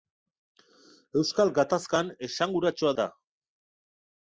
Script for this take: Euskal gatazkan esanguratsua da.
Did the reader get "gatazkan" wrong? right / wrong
right